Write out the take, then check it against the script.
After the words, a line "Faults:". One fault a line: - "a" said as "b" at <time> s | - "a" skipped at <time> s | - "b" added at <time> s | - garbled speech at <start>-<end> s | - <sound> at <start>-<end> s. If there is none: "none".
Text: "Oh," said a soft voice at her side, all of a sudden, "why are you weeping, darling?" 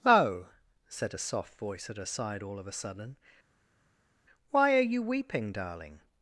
"Oh," said a soft voice at her side, all of a sudden, "why are you weeping, darling?"
Faults:
none